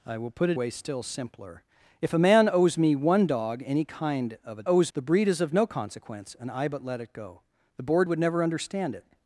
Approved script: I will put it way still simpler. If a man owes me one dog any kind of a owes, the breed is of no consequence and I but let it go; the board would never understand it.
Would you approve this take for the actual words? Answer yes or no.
yes